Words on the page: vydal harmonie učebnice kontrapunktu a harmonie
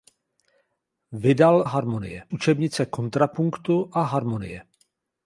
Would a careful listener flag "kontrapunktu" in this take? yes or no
no